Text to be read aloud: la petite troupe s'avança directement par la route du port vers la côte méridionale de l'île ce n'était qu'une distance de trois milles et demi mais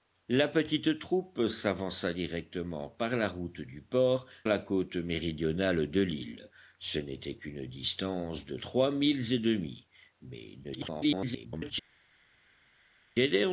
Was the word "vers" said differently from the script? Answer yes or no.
yes